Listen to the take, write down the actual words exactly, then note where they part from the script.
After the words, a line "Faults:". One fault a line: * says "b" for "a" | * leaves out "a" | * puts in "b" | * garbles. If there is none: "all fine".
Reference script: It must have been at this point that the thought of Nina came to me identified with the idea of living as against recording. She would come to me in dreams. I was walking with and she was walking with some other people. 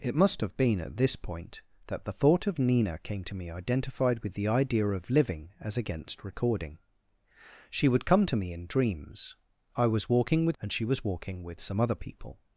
It must have been at this point that the thought of Nina came to me identified with the idea of living as against recording. She would come to me in dreams. I was walking with and she was walking with some other people.
Faults:
all fine